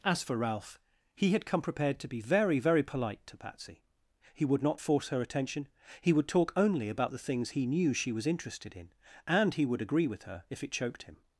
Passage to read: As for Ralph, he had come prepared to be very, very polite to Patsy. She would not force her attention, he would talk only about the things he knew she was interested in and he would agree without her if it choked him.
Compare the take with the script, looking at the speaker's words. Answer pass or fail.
fail